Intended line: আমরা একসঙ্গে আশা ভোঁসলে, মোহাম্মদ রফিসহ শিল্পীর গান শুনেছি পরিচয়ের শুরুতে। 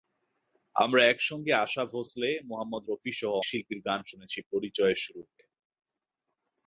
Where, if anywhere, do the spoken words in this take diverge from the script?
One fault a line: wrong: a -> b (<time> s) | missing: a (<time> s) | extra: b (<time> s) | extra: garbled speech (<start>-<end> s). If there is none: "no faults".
no faults